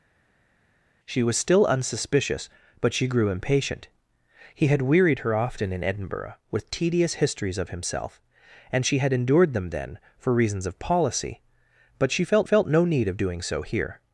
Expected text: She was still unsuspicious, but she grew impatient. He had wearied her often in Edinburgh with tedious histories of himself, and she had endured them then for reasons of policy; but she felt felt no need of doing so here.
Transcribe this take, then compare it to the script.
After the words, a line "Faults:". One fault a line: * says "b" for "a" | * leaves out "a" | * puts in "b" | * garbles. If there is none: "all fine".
She was still unsuspicious, but she grew impatient. He had wearied her often in Edinburgh with tedious histories of himself, and she had endured them then for reasons of policy; but she felt felt no need of doing so here.
Faults:
all fine